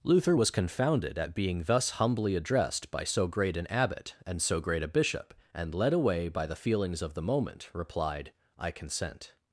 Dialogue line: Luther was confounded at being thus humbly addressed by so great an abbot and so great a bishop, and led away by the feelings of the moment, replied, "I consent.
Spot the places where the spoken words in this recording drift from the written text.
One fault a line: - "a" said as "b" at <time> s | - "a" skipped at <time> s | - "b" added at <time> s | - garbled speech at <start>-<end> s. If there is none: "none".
none